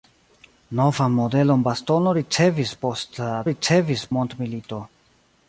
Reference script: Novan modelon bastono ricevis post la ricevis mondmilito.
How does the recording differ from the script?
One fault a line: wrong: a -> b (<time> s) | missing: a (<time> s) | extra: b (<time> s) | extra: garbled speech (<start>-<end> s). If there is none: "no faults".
no faults